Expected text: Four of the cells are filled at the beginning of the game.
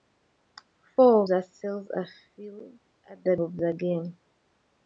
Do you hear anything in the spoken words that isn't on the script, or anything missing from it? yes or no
yes